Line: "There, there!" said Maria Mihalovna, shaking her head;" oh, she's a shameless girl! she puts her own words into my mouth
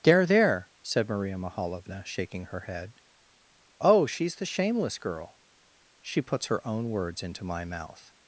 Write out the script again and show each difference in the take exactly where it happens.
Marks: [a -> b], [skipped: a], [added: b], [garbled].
"There, there!" said Maria Mihalovna, shaking her head;" oh, she's [a -> the] shameless girl! she puts her own words into my mouth